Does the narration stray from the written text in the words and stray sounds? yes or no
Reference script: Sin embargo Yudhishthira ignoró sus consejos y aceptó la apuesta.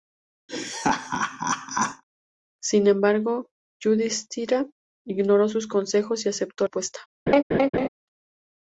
yes